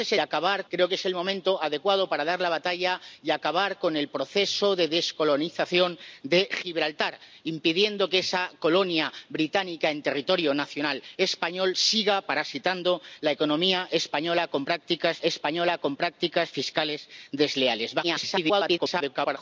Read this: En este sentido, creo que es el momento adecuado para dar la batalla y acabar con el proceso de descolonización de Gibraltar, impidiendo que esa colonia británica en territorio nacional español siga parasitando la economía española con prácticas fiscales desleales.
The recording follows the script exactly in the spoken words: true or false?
false